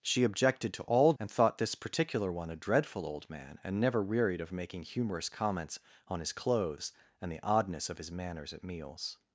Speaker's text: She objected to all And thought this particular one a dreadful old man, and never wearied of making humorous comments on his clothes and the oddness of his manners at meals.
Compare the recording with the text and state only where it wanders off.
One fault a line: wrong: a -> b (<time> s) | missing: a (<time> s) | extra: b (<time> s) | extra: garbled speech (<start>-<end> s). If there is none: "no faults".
no faults